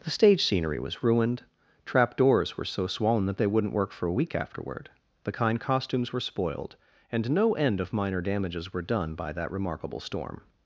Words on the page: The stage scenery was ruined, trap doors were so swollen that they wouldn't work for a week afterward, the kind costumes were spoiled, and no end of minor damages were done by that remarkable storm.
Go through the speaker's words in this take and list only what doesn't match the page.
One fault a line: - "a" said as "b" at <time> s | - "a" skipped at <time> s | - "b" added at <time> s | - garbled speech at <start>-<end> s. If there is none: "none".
none